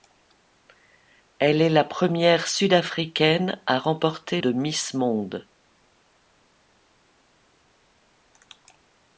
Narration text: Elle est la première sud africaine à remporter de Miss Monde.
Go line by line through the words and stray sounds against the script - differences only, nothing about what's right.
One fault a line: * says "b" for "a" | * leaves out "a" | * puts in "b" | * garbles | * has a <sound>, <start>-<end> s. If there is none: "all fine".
all fine